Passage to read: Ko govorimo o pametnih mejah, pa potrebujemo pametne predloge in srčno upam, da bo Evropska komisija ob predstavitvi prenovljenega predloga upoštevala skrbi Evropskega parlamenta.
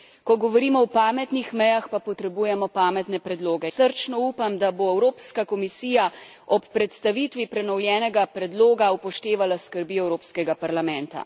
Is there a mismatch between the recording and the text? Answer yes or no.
yes